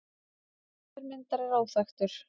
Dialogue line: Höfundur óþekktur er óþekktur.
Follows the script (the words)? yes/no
no